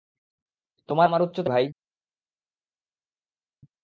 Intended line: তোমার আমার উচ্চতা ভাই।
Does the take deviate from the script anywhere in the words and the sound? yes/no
no